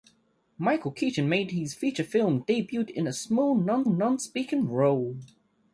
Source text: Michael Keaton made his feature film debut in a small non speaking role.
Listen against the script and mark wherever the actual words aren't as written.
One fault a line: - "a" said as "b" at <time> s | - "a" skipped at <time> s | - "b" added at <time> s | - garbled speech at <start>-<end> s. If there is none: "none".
- "non" added at 3.9 s